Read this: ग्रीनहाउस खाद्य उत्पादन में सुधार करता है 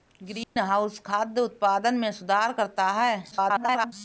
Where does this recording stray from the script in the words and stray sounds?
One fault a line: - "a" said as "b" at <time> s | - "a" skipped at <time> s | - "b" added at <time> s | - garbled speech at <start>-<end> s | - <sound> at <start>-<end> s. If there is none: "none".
- dropout at 0.4-0.6 s
- garbled speech at 3.3-3.9 s